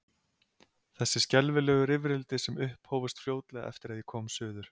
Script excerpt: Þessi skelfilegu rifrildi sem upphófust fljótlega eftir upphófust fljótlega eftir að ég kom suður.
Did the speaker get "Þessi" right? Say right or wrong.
right